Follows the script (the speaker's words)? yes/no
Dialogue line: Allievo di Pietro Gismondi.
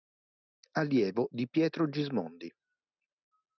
yes